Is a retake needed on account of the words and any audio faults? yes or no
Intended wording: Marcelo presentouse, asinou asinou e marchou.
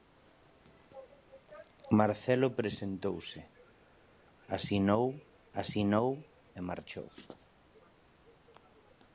no